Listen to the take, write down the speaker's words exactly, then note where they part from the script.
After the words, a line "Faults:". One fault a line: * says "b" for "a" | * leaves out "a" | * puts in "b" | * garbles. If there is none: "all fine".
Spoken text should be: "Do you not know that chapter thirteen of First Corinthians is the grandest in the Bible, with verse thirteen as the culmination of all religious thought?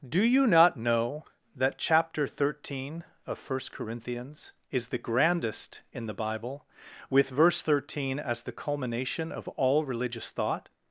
"Do you not know that chapter thirteen of First Corinthians is the grandest in the Bible, with verse thirteen as the culmination of all religious thought?
Faults:
all fine